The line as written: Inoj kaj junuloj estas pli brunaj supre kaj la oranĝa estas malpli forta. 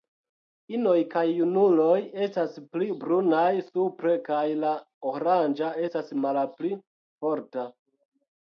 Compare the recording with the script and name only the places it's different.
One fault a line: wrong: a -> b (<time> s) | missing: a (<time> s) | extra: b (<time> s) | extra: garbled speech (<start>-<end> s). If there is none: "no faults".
no faults